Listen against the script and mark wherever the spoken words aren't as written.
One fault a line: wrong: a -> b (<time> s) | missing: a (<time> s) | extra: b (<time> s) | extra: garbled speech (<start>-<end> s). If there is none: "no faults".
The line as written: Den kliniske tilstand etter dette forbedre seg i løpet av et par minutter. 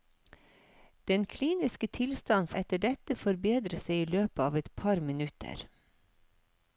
no faults